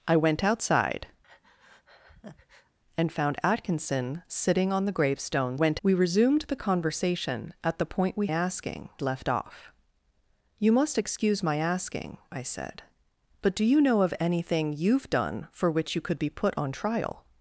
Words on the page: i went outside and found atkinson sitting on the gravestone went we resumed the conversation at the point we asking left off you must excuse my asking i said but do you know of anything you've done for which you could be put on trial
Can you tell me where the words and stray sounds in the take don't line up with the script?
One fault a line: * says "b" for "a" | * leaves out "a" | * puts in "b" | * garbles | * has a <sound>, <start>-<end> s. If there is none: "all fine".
* has a breath, 1.2-2.8 s